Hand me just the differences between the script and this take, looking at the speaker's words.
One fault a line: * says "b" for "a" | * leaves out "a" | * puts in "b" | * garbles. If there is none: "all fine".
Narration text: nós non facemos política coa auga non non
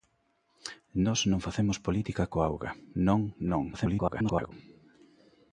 * garbles